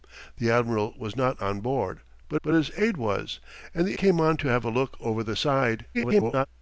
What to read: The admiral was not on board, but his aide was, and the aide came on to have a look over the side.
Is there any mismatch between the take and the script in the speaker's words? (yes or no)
yes